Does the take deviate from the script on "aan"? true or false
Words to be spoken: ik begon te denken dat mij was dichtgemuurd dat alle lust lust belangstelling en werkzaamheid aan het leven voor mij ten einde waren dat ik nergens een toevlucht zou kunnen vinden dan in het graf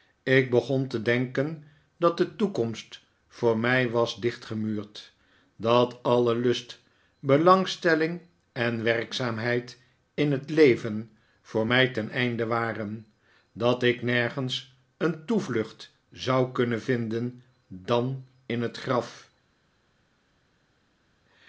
true